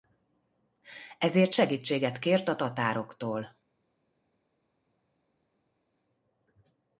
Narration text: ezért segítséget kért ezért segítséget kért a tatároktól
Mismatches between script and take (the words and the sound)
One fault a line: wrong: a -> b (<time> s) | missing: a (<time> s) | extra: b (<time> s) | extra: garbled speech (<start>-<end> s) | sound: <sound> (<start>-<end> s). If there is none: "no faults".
missing: ezért segítséget kért (2.5 s)